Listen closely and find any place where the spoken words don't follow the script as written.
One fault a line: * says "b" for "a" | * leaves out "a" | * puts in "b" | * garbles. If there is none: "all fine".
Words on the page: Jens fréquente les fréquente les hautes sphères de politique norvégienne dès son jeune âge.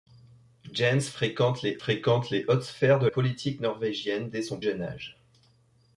all fine